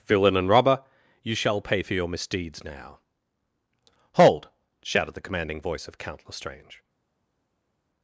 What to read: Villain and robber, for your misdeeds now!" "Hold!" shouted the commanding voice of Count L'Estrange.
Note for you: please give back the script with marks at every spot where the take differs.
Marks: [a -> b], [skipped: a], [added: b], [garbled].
Villain and robber, [added: you shall pay] for your misdeeds now!" "Hold!" shouted the commanding voice of Count L'Estrange.